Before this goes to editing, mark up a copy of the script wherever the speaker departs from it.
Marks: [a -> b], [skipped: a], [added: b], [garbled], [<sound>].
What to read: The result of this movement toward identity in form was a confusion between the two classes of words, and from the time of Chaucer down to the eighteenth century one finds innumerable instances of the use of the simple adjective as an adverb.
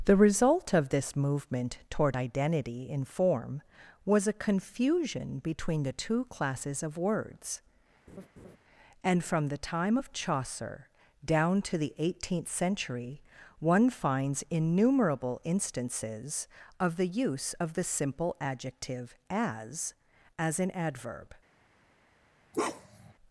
The result of this movement toward identity in form was a confusion between the two classes of words, [laugh] and from the time of Chaucer down to the eighteenth century one finds innumerable instances of the use of the simple adjective as [added: as] an adverb. [bark]